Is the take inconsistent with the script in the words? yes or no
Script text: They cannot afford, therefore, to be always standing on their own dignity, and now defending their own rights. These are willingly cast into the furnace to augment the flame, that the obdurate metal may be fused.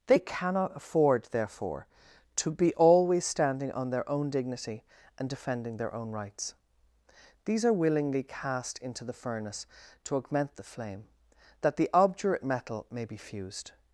yes